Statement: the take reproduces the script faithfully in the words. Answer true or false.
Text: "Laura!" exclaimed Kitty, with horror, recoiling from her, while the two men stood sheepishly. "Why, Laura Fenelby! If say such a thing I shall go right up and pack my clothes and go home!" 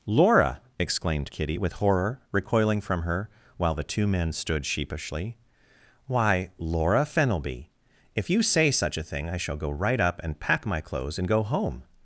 false